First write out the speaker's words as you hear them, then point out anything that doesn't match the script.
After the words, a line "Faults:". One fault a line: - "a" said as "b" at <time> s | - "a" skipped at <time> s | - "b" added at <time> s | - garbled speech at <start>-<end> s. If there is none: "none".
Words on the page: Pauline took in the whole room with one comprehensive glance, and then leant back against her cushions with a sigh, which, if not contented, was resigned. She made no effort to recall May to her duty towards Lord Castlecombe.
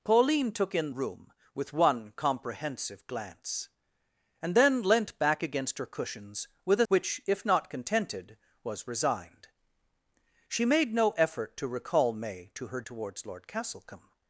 Pauline took in room with one comprehensive glance, and then leant back against her cushions with a which, if not contented, was resigned. She made no effort to recall May to her towards Lord Castlecombe.
Faults:
- "the whole" skipped at 0.9 s
- "sigh" skipped at 6.9 s
- "duty" skipped at 12.8 s